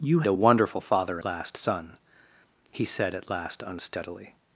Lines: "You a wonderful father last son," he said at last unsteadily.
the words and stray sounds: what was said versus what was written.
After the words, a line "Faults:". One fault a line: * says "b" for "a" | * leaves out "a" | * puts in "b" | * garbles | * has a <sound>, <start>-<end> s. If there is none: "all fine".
"You a wonderful father last son," he said at last unsteadily.
Faults:
all fine